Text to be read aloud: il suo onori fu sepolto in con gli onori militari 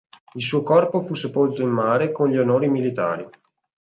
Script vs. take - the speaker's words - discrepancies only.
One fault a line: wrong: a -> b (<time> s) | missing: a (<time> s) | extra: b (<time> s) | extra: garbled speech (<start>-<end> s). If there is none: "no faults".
wrong: onori -> corpo (0.6 s)
extra: mare (1.7 s)